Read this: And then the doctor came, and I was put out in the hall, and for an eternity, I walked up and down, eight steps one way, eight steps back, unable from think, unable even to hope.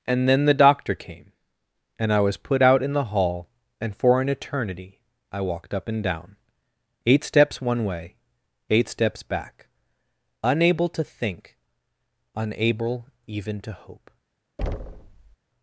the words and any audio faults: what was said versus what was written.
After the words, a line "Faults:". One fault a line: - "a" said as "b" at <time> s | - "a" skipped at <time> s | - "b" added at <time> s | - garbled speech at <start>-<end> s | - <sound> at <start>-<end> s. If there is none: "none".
And then the doctor came, and I was put out in the hall, and for an eternity, I walked up and down, eight steps one way, eight steps back, unable to think, unable even to hope.
Faults:
- "from" said as "to" at 10.9 s
- thud at 14.6-15.4 s